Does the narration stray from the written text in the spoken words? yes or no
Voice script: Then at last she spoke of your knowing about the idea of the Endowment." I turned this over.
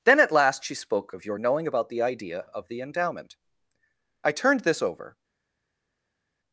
no